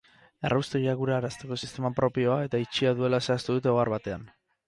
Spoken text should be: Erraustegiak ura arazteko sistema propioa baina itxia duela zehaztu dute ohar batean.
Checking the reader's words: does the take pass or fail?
fail